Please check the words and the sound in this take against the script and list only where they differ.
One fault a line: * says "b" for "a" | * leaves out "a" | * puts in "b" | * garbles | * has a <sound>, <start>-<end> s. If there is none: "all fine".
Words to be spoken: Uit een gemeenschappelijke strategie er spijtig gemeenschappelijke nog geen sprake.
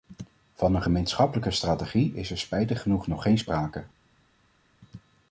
* says "Van" for "Uit"
* puts in "is"
* says "genoeg" for "gemeenschappelijke"